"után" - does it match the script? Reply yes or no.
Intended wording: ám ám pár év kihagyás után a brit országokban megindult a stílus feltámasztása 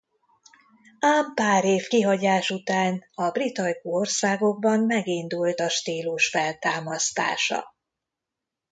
yes